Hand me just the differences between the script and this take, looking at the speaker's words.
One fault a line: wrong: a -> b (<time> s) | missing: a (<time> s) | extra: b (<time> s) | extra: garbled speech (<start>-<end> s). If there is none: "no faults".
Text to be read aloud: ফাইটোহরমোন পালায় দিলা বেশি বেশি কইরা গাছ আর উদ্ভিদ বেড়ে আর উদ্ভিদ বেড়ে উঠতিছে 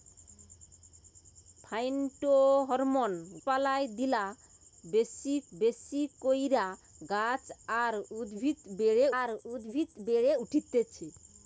no faults